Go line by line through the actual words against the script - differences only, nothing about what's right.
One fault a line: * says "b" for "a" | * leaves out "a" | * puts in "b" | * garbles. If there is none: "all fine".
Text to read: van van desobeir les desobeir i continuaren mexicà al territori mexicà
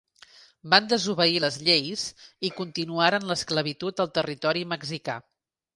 * leaves out "van"
* says "lleis" for "desobeir"
* says "l'esclavitud" for "mexicà"